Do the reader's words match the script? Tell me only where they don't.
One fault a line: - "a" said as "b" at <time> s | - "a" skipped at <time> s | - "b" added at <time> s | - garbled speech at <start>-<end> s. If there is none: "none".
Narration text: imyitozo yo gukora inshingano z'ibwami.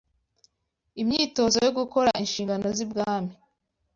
none